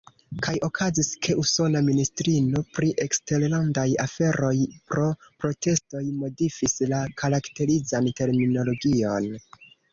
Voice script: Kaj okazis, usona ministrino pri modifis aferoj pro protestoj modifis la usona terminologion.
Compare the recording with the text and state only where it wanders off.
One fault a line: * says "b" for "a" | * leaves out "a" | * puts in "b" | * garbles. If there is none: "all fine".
* puts in "ke"
* says "eksterlandaj" for "modifis"
* says "karakterizan" for "usona"